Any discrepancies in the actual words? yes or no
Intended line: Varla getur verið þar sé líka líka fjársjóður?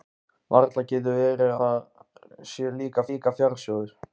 no